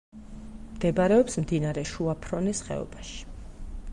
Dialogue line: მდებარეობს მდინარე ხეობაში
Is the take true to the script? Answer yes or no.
no